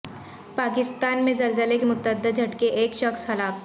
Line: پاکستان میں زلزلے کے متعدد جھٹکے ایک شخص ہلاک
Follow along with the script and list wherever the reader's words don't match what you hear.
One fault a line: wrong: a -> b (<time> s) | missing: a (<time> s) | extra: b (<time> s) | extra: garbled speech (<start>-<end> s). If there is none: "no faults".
no faults